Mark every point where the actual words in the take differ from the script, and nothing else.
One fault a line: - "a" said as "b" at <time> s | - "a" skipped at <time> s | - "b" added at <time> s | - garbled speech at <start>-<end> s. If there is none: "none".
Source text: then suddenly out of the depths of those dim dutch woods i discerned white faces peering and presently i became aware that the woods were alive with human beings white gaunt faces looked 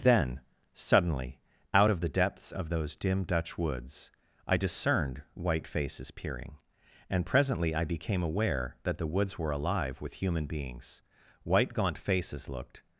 none